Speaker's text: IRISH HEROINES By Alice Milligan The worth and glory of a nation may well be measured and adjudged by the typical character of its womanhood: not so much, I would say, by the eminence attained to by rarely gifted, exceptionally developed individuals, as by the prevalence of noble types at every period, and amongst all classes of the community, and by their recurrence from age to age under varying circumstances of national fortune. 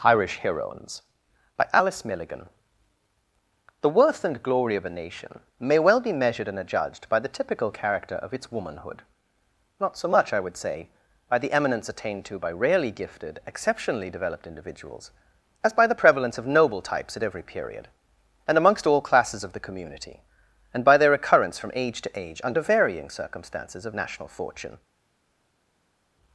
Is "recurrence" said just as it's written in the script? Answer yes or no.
no